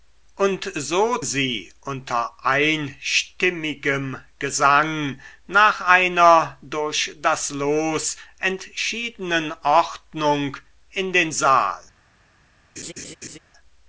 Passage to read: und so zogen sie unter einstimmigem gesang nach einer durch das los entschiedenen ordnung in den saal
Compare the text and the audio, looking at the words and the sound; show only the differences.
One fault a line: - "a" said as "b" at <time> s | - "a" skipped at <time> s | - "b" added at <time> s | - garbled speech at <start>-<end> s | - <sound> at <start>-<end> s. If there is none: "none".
- "zogen" skipped at 1.2 s
- laugh at 12.8-13.4 s